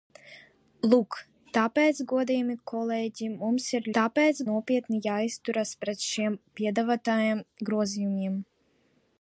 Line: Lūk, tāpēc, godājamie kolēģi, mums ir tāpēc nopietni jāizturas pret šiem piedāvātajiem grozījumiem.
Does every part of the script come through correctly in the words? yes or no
yes